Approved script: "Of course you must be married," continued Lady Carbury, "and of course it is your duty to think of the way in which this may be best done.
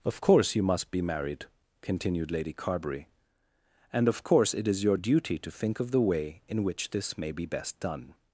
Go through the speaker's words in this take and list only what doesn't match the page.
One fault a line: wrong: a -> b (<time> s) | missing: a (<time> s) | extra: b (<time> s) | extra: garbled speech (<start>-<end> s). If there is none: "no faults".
no faults